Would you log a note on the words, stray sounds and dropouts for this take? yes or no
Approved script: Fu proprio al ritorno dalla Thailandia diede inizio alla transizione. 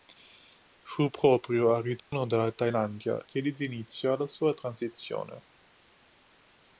yes